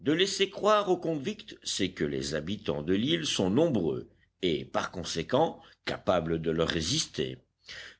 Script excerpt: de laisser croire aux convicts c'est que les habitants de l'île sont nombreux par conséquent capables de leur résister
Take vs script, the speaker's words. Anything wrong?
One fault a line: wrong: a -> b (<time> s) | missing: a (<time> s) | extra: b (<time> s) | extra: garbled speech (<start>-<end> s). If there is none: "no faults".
extra: et (4.4 s)